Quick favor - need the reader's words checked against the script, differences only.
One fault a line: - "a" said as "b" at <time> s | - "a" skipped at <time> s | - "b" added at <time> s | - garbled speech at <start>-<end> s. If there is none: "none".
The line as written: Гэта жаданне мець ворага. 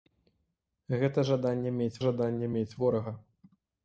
- "жаданне мець" added at 2.0 s